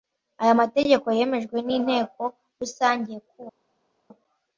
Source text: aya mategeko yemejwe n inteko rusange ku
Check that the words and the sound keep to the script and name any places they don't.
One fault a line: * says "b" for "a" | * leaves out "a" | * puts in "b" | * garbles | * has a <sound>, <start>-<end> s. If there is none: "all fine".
all fine